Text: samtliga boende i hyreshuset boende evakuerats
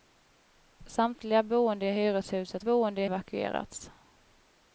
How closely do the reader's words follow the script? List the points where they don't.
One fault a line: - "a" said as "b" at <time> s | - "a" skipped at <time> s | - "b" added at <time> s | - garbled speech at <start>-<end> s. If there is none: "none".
none